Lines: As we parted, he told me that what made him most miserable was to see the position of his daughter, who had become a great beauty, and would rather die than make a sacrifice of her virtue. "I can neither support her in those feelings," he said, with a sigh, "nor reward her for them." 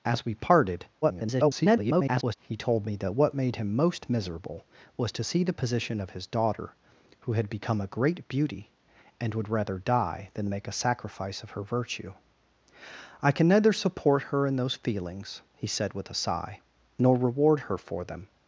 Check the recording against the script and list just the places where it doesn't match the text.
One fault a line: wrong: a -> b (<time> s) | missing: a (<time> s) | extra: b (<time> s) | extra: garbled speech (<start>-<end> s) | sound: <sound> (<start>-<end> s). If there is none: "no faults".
extra: garbled speech (1.0-2.4 s)